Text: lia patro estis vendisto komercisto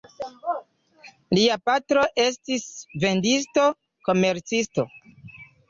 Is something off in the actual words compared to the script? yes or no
no